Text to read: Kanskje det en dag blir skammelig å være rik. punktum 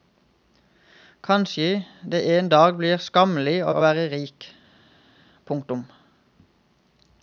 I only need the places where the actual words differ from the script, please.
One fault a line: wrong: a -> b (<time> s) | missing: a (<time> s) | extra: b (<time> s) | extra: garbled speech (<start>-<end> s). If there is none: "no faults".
extra: å (3.7 s)